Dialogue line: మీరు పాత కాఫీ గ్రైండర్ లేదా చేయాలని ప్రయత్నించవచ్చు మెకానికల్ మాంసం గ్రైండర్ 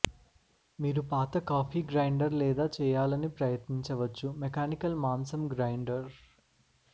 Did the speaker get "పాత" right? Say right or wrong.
right